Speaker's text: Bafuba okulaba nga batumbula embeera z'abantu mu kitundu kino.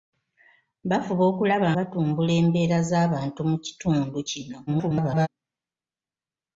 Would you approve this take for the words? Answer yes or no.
no